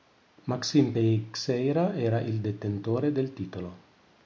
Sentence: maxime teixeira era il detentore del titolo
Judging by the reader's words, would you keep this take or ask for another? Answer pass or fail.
pass